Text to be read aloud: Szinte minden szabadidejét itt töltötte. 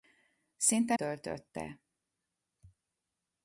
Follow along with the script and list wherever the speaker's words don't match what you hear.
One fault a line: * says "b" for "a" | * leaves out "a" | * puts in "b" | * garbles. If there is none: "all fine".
* leaves out "minden szabadidejét itt"